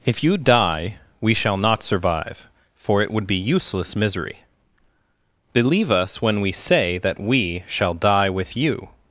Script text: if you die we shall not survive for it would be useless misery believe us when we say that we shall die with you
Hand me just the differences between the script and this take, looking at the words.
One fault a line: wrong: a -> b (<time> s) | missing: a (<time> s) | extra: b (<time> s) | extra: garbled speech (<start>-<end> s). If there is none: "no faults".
no faults